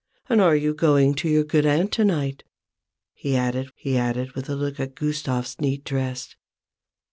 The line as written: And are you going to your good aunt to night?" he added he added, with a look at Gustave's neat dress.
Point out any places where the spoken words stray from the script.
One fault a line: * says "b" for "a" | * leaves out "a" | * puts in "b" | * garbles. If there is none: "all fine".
all fine